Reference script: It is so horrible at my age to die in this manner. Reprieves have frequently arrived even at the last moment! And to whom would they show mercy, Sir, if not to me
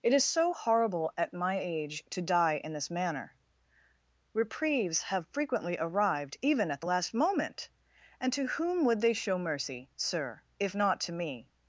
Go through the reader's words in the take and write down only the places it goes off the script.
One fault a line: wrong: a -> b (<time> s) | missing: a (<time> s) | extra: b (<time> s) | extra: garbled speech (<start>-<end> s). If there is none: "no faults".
no faults